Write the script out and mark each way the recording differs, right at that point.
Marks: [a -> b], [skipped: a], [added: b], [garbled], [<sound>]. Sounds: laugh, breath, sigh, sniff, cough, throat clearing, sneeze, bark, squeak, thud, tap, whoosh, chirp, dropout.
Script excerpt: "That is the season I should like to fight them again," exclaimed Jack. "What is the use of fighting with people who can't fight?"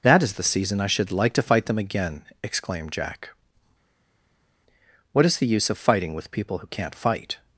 "That is the season I should like to fight them again," exclaimed Jack. "What is the use of fighting with people who can't fight?"